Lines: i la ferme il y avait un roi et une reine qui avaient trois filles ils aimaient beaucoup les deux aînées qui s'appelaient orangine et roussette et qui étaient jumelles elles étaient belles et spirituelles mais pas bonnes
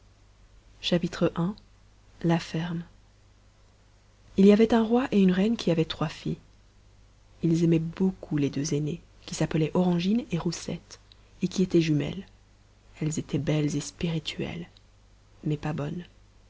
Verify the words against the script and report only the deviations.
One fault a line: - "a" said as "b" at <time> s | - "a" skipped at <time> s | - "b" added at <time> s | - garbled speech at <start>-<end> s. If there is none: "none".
none